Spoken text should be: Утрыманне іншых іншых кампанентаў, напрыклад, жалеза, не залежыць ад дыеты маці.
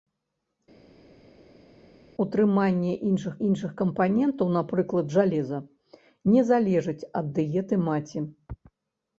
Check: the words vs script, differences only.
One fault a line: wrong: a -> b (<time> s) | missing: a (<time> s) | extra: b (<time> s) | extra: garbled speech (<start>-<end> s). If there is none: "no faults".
no faults